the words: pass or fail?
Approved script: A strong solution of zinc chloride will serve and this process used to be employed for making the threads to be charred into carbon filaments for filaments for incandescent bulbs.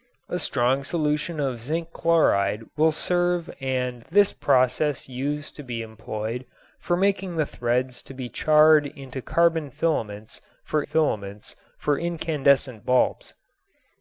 pass